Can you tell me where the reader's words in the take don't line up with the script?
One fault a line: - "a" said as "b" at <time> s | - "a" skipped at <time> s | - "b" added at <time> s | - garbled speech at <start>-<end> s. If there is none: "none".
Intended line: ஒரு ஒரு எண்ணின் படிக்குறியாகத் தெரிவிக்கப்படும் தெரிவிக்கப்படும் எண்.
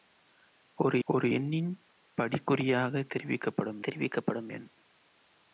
none